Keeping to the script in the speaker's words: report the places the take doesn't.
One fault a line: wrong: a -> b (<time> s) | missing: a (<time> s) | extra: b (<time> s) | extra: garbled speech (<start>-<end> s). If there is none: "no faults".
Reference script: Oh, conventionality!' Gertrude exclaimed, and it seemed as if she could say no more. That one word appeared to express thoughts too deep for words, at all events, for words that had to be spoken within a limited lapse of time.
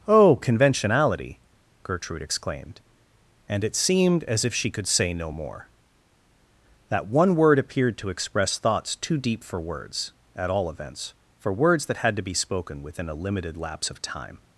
no faults